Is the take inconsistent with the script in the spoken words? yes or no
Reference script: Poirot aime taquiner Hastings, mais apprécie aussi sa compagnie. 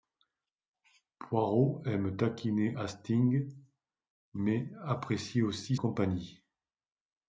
yes